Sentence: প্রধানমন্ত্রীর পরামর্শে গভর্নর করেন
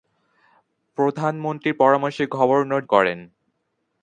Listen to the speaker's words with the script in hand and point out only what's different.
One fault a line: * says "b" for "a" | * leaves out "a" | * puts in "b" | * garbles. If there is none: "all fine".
all fine